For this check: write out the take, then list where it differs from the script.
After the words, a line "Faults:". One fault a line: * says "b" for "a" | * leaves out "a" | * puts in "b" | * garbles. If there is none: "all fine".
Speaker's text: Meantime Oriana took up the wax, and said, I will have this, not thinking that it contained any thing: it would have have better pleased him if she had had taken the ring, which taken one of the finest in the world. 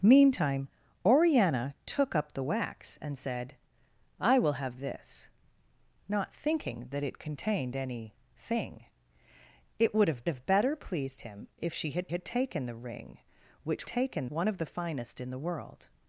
Meantime Oriana took up the wax, and said, I will have this, not thinking that it contained any thing: it would have have better pleased him if she had had taken the ring, which taken one of the finest in the world.
Faults:
all fine